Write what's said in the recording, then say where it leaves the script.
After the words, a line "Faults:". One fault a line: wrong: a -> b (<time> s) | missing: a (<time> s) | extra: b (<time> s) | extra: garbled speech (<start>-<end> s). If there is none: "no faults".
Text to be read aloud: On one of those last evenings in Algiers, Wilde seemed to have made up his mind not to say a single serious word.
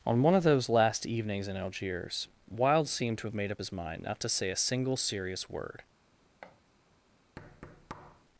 On one of those last evenings in Algiers, Wilde seemed to have made up his mind not to say a single serious word.
Faults:
no faults